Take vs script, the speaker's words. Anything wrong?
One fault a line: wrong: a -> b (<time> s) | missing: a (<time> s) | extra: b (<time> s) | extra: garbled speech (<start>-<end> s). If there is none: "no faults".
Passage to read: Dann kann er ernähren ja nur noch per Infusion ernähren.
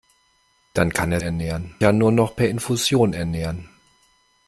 no faults